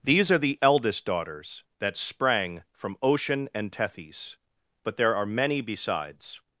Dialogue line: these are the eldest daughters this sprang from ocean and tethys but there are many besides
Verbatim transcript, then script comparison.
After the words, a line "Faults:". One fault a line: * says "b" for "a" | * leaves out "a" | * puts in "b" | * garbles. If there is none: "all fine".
these are the eldest daughters that sprang from ocean and tethys but there are many besides
Faults:
* says "that" for "this"